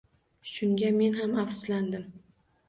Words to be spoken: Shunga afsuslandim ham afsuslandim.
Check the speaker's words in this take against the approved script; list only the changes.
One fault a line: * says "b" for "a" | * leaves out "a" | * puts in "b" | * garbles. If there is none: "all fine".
* says "men" for "afsuslandim"